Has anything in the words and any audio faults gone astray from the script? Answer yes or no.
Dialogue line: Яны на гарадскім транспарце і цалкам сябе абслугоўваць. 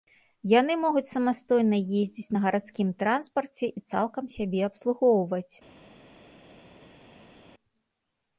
yes